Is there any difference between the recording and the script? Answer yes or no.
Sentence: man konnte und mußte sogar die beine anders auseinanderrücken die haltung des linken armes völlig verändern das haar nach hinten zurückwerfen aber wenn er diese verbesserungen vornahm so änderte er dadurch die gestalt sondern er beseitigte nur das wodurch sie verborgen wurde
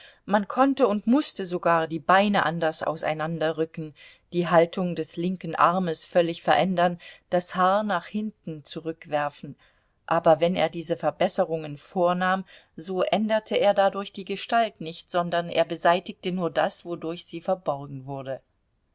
yes